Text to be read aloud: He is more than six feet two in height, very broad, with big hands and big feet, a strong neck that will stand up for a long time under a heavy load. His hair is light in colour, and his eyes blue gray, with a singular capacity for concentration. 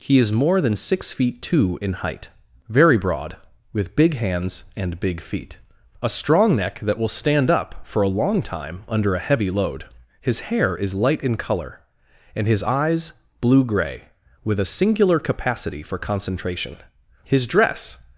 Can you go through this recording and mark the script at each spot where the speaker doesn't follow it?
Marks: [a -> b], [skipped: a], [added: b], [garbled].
He is more than six feet two in height, very broad, with big hands and big feet, a strong neck that will stand up for a long time under a heavy load. His hair is light in colour, and his eyes blue gray, with a singular capacity for concentration. [added: His dress]